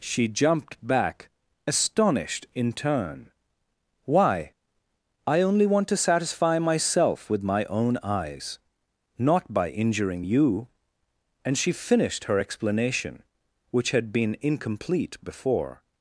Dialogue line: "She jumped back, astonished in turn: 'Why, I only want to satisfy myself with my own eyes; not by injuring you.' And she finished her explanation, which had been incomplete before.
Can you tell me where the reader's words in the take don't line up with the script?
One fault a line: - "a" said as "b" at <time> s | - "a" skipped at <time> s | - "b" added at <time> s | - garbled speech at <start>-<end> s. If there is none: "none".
none